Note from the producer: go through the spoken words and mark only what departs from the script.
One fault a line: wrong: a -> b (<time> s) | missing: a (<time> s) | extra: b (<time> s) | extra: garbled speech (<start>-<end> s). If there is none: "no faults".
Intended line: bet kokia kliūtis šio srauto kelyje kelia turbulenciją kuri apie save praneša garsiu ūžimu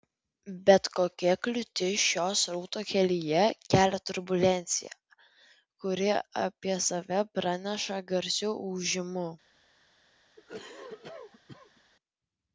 no faults